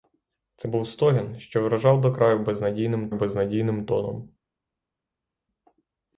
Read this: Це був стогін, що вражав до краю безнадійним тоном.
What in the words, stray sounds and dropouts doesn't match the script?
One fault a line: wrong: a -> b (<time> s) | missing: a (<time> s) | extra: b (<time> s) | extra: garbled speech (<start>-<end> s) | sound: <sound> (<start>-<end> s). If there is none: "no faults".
extra: безнадійним (3.1 s)